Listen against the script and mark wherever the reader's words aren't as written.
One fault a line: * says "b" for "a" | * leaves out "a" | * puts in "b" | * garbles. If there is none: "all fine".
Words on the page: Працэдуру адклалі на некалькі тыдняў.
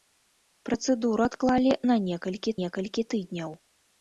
* puts in "некалькі"